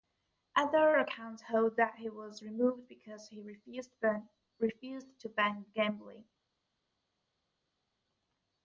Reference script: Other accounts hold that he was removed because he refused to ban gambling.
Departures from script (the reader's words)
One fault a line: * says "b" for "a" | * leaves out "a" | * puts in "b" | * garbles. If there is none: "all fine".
all fine